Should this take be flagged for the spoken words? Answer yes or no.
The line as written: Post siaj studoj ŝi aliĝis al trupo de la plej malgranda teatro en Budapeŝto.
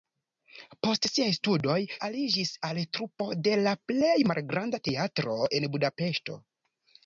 yes